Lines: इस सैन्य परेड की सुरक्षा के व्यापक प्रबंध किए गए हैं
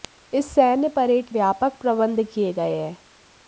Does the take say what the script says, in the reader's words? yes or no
no